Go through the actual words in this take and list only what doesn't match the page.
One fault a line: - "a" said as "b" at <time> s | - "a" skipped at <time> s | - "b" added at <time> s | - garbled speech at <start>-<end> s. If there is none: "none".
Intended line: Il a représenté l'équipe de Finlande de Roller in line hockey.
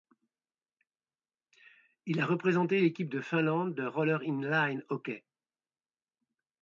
none